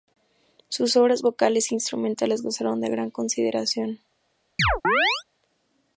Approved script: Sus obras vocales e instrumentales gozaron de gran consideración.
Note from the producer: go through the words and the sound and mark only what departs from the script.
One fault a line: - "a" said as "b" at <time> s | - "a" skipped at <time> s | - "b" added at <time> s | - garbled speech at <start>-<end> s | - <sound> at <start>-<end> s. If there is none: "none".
- chirp at 4.6-5.2 s